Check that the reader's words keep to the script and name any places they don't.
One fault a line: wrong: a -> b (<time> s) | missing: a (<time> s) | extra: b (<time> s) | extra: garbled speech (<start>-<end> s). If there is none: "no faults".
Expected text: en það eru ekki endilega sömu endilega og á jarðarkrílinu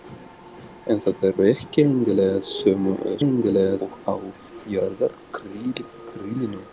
no faults